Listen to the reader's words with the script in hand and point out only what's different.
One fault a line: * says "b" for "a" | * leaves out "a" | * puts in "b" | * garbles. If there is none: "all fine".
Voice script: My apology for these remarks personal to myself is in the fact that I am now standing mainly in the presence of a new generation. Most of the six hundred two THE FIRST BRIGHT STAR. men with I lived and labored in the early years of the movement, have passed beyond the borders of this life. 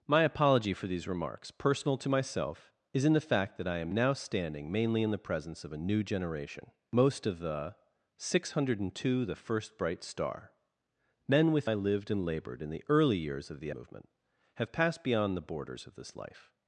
all fine